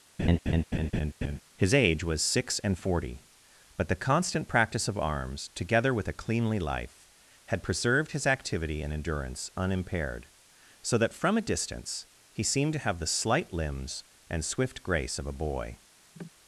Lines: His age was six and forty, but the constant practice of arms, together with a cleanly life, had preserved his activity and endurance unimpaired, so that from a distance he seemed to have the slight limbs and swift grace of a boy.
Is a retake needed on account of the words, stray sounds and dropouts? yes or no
yes